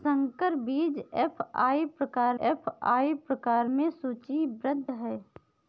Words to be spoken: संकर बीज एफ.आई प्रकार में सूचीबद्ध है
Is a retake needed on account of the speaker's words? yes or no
yes